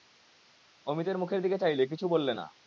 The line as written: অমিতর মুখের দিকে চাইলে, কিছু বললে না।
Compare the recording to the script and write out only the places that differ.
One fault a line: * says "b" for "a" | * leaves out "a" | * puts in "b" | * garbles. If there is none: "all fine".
all fine